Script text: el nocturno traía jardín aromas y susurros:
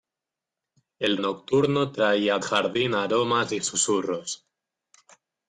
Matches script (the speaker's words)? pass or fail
pass